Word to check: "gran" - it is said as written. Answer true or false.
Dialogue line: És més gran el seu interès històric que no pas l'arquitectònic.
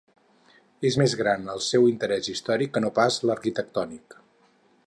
true